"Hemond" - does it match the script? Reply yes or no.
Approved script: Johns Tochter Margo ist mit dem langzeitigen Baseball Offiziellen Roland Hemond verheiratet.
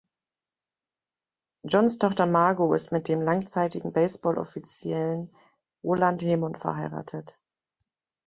yes